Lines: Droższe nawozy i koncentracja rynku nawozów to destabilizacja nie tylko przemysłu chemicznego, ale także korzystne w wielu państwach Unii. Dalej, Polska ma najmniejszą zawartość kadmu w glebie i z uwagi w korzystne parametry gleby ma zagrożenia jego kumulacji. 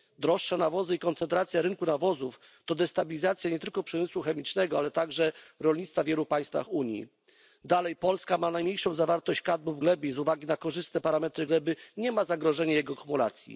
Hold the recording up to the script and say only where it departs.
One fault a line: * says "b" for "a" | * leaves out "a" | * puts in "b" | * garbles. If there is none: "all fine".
* says "rolnictwa" for "korzystne"
* says "na" for "w"
* puts in "nie"